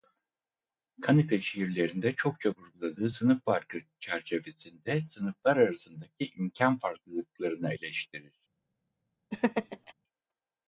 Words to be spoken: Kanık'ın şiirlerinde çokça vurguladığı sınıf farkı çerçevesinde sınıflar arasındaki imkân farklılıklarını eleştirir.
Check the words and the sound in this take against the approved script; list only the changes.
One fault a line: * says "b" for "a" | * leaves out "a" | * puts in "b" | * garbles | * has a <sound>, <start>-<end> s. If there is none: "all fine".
* has a laugh, 9.3-9.9 s